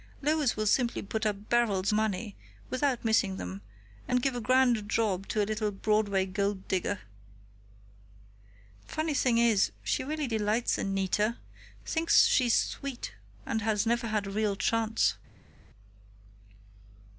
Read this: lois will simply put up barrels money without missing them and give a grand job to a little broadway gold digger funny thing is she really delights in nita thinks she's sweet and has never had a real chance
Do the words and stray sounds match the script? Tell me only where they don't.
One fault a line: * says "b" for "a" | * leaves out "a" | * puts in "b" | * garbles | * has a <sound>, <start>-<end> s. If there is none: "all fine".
all fine